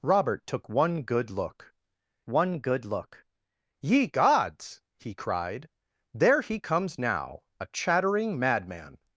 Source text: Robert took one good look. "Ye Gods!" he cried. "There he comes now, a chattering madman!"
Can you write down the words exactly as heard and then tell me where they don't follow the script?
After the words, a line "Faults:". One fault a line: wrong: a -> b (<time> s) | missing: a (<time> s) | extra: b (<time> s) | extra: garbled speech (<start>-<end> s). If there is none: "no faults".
Robert took one good look one good look. "Ye Gods!" he cried. "There he comes now, a chattering madman!"
Faults:
extra: one good look (2.3 s)